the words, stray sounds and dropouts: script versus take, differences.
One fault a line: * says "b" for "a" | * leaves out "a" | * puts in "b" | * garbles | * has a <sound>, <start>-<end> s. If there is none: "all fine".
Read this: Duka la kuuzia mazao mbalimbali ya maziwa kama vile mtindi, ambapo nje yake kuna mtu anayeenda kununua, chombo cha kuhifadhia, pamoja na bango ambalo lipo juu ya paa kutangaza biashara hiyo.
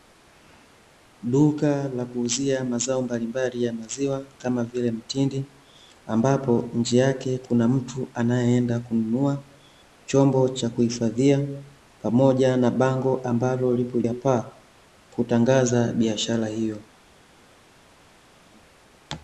* leaves out "juu"